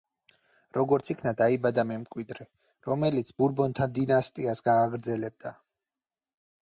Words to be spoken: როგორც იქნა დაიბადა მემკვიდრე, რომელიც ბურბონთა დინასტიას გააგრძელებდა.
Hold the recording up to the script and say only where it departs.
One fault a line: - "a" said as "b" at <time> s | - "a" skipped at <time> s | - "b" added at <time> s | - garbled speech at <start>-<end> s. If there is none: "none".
none